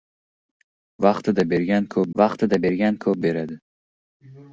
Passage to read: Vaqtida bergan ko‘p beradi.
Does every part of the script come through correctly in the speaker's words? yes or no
no